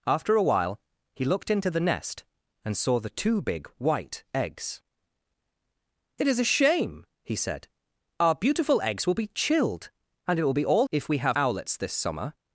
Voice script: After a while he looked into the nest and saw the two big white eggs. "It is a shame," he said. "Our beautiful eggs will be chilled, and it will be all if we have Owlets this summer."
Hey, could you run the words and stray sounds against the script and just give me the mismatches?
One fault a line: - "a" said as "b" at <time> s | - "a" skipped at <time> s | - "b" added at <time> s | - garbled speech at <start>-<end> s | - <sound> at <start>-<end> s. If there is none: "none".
none